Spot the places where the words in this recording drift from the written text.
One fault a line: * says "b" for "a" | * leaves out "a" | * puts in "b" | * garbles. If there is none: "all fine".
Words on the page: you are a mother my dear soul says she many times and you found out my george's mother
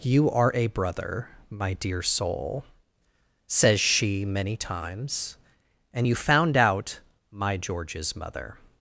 * says "brother" for "mother"